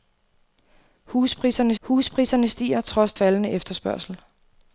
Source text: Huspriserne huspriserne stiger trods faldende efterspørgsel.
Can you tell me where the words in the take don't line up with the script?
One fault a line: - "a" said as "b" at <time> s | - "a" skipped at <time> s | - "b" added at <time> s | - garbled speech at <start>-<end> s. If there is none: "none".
none